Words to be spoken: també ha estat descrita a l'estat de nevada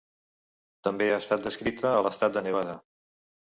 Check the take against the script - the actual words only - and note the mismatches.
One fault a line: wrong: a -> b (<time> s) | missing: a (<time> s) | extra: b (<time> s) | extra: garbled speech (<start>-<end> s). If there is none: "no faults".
no faults